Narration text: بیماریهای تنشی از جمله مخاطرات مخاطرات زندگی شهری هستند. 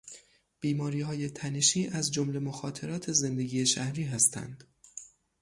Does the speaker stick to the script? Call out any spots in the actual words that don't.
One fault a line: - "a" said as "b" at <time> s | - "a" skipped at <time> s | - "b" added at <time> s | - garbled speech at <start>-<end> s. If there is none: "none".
- "مخاطرات" skipped at 3.1 s